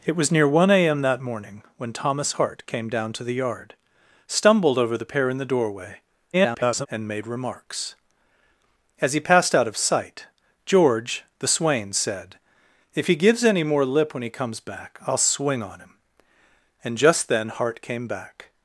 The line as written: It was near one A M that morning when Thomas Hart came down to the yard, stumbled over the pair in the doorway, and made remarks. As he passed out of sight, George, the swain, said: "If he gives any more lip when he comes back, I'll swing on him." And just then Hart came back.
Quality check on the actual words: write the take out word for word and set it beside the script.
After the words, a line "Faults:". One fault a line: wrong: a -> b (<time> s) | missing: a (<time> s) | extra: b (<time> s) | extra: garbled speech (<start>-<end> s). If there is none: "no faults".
It was near one A M that morning when Thomas Hart came down to the yard, stumbled over the pair in the doorway, [garbled] and made remarks. As he passed out of sight, George, the swain, said: "If he gives any more lip when he comes back, I'll swing on him." And just then Hart came back.
Faults:
extra: garbled speech (6.3-6.9 s)